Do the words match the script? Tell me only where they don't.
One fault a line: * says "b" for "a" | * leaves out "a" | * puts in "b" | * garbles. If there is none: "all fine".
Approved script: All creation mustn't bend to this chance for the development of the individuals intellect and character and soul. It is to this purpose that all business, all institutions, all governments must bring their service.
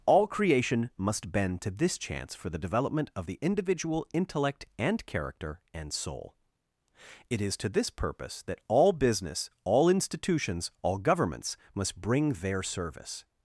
* says "must" for "mustn't"
* says "individual" for "individuals"